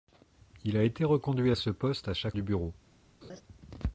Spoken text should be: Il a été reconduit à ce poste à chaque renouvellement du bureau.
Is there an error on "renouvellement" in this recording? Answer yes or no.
yes